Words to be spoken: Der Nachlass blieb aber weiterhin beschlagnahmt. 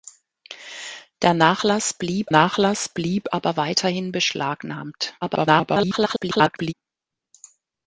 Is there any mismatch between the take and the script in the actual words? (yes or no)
yes